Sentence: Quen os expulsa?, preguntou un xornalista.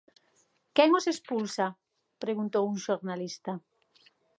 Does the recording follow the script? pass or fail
pass